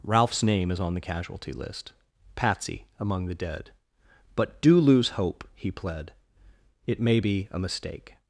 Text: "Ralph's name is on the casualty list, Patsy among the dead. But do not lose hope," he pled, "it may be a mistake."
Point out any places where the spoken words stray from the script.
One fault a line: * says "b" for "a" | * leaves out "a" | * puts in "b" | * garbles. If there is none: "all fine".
* leaves out "not"